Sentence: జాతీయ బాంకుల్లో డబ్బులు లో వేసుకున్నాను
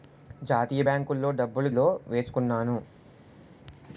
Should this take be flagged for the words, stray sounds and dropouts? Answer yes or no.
no